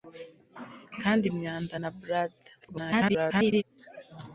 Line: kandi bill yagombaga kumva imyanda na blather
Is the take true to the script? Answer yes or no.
no